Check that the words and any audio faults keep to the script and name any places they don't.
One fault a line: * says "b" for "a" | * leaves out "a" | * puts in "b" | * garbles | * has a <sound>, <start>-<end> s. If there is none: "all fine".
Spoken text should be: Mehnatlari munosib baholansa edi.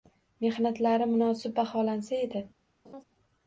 * has a laugh, 2.8-3.0 s